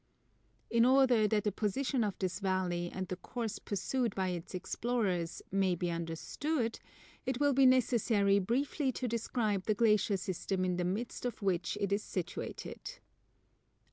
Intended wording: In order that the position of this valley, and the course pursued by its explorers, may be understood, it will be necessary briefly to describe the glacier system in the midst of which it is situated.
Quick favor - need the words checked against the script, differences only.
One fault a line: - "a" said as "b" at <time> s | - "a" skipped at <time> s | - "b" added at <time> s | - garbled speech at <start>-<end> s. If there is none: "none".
none